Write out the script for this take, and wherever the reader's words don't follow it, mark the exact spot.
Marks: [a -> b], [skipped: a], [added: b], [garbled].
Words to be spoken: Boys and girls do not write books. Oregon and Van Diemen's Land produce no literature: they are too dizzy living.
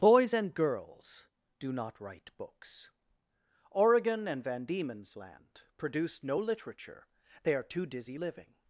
Boys and girls do not write books. Oregon and Van Diemen's Land produce no literature: they are too dizzy living.